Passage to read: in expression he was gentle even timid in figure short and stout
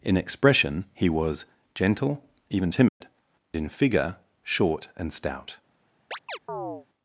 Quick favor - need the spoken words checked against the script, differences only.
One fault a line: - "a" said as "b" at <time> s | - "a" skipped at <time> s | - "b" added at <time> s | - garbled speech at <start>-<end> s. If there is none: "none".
none